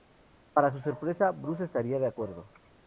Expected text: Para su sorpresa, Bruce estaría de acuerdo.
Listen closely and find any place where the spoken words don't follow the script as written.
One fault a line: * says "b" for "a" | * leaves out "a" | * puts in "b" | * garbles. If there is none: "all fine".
all fine